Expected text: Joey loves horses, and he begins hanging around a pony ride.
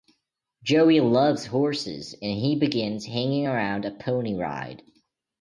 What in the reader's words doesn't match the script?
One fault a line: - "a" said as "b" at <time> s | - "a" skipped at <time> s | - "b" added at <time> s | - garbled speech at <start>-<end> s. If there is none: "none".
none